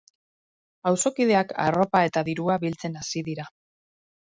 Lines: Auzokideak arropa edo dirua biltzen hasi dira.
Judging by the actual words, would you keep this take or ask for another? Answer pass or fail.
fail